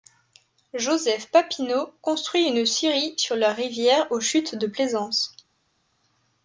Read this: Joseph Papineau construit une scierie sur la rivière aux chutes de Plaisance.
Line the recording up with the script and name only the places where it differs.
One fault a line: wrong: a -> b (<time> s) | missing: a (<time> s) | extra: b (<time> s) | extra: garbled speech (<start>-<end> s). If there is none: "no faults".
no faults